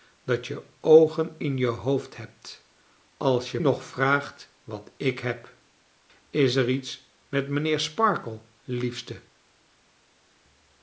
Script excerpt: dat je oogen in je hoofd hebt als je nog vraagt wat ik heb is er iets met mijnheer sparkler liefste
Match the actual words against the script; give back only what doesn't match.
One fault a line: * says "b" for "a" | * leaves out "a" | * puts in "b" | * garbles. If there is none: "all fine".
all fine